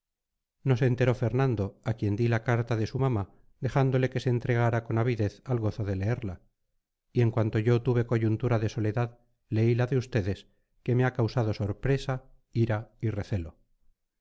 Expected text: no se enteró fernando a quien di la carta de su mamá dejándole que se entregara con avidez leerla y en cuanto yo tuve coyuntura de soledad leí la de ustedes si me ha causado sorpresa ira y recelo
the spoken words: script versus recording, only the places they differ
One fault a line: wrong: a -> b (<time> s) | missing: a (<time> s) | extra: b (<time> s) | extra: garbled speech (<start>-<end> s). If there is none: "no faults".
extra: al gozo de (5.4 s)
wrong: si -> que (10.8 s)